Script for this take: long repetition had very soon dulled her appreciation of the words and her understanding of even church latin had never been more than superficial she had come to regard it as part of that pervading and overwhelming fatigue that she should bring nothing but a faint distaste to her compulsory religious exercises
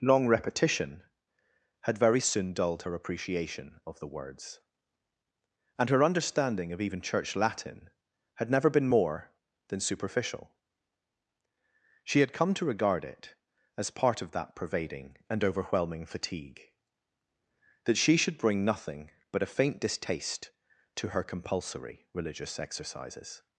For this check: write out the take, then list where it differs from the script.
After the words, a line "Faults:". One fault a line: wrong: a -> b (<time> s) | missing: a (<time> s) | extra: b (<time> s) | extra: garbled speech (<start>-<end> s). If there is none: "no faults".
long repetition had very soon dulled her appreciation of the words and her understanding of even church latin had never been more than superficial she had come to regard it as part of that pervading and overwhelming fatigue that she should bring nothing but a faint distaste to her compulsory religious exercises
Faults:
no faults